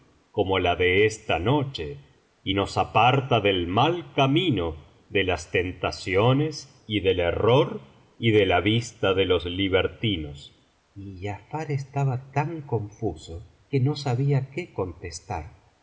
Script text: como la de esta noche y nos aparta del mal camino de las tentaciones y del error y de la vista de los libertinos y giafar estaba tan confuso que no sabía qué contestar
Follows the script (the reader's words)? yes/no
yes